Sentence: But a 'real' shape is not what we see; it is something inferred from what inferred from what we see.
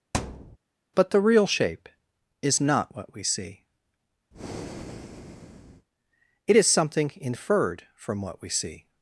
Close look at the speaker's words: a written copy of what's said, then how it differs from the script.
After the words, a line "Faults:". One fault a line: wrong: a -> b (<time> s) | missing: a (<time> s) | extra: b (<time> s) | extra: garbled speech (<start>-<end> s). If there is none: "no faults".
But the 'real' shape is not what we see; it is something inferred from what we see.
Faults:
wrong: a -> the (1.1 s)
missing: inferred from what (8.4 s)